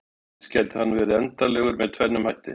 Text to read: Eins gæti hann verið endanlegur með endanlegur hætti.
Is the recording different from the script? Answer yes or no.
yes